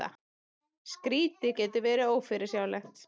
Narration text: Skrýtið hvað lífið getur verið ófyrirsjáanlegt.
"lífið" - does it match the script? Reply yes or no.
no